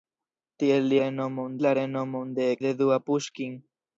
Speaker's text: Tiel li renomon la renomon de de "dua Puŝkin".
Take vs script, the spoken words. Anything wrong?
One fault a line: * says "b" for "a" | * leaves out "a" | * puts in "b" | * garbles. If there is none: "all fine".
all fine